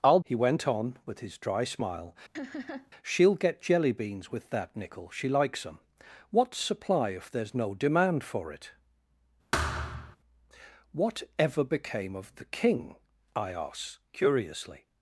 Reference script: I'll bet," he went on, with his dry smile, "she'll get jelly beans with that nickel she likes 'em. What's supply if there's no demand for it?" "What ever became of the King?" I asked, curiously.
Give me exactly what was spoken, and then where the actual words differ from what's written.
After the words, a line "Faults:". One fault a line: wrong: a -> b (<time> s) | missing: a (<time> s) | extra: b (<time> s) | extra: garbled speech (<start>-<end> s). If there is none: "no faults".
I'll," he went on, with his dry smile, "she'll get jelly beans with that nickel she likes 'em. What's supply if there's no demand for it?" "What ever became of the King?" I asked, curiously.
Faults:
missing: bet (0.2 s)